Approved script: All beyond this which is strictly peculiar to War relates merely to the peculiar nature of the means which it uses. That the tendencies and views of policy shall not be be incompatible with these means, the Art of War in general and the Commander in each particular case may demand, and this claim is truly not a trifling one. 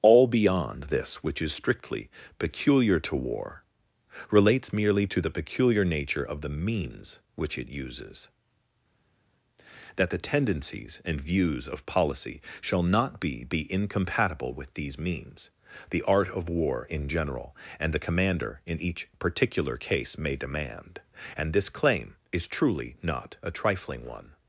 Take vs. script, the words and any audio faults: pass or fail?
pass